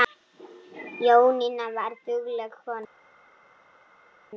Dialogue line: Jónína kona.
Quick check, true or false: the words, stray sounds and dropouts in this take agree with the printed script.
false